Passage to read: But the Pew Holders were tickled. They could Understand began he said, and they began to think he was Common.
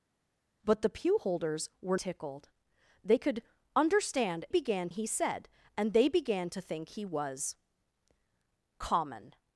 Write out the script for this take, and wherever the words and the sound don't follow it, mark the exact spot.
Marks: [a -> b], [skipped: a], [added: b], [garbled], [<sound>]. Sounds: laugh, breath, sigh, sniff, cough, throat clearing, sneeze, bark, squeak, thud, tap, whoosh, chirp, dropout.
But the Pew Holders were tickled. They could Understand began he said, and they began to think he was Common.